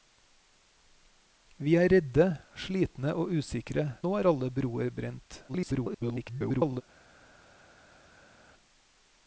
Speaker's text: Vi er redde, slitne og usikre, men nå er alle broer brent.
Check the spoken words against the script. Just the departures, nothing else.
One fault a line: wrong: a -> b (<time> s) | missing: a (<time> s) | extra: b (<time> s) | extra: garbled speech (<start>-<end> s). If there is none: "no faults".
missing: men (3.9 s)
extra: garbled speech (5.5-6.8 s)